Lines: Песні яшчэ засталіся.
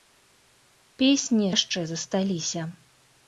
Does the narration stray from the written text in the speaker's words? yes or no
no